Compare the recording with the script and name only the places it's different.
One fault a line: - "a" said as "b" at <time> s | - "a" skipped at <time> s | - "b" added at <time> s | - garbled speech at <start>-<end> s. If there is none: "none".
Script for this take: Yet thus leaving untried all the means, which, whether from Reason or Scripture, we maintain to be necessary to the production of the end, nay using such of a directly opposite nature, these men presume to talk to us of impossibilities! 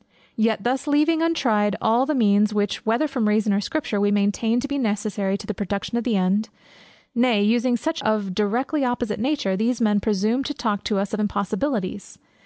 none